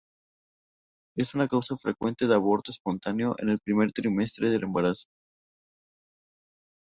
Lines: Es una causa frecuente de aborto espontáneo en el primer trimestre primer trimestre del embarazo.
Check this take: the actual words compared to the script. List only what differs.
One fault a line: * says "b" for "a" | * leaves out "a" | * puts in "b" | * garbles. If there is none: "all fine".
* leaves out "primer trimestre"